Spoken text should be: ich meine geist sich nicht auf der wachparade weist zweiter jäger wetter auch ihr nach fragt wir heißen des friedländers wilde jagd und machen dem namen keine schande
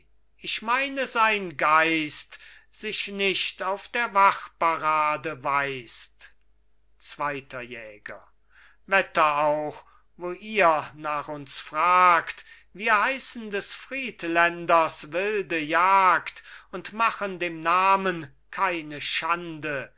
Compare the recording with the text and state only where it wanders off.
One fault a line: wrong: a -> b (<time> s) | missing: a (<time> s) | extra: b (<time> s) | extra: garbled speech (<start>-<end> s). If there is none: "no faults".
extra: sein (1.1 s)
extra: wo (10.2 s)
extra: uns (11.3 s)